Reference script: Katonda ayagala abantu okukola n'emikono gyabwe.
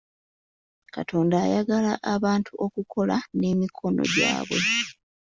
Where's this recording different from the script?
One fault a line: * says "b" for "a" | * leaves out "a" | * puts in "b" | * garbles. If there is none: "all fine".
all fine